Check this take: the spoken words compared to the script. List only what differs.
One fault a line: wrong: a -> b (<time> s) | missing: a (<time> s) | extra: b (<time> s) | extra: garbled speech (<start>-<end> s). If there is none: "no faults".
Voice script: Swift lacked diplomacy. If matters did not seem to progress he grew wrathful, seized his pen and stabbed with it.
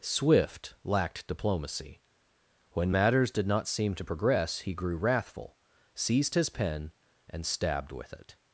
wrong: If -> When (2.7 s)